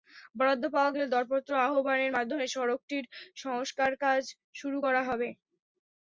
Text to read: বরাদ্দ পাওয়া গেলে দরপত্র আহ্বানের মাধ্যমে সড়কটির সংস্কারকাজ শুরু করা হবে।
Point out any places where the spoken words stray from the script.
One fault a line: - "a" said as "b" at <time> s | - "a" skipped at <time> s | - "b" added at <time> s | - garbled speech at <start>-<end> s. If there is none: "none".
none